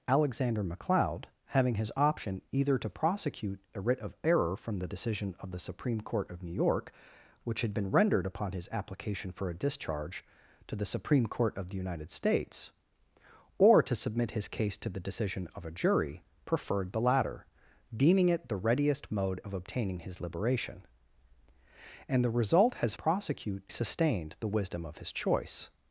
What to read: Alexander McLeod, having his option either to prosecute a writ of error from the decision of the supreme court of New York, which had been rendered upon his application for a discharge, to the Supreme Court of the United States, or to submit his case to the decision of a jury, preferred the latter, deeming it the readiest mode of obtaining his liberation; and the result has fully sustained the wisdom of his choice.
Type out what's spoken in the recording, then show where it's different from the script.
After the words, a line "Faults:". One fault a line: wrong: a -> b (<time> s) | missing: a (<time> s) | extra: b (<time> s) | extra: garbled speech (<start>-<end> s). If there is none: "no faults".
Alexander McLeod, having his option either to prosecute a writ of error from the decision of the supreme court of New York, which had been rendered upon his application for a discharge, to the Supreme Court of the United States, or to submit his case to the decision of a jury, preferred the latter, deeming it the readiest mode of obtaining his liberation; and the result has prosecute sustained the wisdom of his choice.
Faults:
wrong: fully -> prosecute (22.9 s)